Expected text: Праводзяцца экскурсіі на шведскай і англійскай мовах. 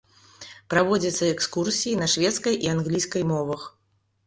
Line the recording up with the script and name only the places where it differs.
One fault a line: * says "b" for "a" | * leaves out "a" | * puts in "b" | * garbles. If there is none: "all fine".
all fine